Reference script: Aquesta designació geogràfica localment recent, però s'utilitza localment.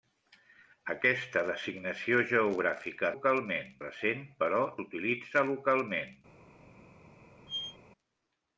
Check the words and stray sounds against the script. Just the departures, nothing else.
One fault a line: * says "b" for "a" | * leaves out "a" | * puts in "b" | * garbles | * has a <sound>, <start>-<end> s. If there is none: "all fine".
* has a squeak, 7.5-7.8 s